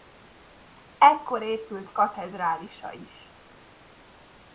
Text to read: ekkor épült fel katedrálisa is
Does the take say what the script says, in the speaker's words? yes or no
no